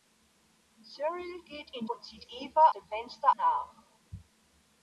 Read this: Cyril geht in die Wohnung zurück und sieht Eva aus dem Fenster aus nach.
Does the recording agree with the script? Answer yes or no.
no